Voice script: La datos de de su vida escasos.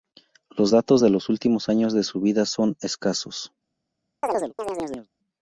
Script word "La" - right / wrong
wrong